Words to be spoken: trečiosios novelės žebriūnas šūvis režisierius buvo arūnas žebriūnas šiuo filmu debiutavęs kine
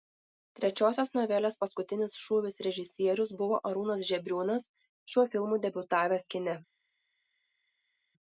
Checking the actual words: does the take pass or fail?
fail